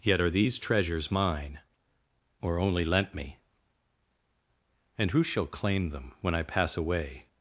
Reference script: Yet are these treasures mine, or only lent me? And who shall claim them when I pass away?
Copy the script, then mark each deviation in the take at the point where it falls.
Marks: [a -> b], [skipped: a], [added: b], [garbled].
Yet are these treasures mine, or only lent me? And who shall claim them when I pass away?